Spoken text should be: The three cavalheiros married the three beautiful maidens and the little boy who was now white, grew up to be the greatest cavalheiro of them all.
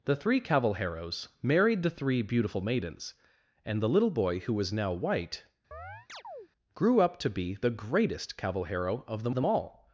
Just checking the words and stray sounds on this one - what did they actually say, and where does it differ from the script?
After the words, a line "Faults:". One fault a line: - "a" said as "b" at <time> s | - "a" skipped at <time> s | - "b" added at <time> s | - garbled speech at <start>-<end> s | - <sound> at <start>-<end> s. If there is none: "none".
The three cavalheiros married the three beautiful maidens and the little boy who was now white, grew up to be the greatest cavalheiro of them them all.
Faults:
- chirp at 5.7-6.5 s
- "them" added at 9.3 s